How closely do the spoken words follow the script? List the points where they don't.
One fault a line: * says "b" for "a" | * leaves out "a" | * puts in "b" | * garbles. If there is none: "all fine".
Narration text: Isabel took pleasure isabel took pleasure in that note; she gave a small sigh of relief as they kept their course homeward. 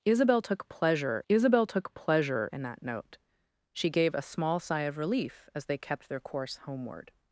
all fine